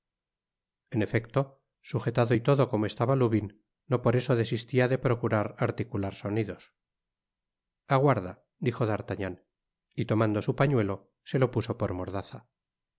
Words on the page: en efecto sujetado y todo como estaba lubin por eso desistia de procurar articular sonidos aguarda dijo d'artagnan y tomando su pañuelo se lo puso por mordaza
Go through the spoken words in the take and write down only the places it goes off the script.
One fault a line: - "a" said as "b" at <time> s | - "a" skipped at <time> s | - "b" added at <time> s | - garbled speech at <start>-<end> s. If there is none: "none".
- "no" added at 3.9 s